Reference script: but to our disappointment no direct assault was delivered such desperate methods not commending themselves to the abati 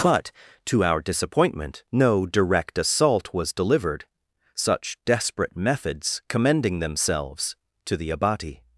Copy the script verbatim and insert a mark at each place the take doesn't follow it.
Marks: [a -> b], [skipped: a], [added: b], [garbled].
but to our disappointment no direct assault was delivered such desperate methods [skipped: not] commending themselves to the abati